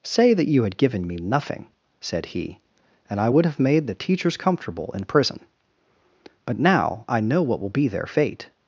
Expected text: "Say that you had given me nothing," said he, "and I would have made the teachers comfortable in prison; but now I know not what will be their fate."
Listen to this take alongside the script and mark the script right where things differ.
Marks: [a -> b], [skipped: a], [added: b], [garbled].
"Say that you had given me nothing," said he, "and I would have made the teachers comfortable in prison; but now I know [skipped: not] what will be their fate."